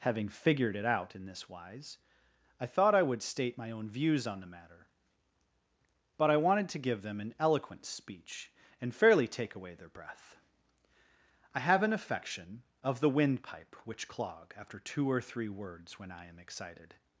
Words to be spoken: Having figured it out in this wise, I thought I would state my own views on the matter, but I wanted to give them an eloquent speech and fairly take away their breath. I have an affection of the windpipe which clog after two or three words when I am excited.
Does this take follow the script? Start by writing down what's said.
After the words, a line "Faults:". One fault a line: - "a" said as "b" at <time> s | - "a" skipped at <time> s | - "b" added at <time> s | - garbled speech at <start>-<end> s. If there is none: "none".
Having figured it out in this wise, I thought I would state my own views on the matter, but I wanted to give them an eloquent speech and fairly take away their breath. I have an affection of the windpipe which clog after two or three words when I am excited.
Faults:
none